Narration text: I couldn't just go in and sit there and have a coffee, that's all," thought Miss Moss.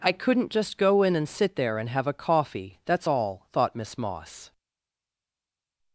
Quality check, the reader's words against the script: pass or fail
pass